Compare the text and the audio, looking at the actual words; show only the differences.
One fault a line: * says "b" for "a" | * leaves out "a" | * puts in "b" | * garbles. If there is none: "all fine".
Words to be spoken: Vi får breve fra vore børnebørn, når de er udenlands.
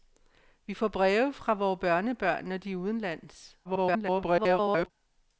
* garbles